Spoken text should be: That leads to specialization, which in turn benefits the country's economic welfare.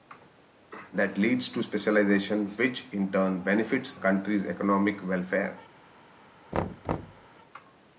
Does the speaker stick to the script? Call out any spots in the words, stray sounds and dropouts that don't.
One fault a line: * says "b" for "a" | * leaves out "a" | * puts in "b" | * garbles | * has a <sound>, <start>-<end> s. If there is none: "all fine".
* leaves out "the"
* has a thud, 6.5-7.3 s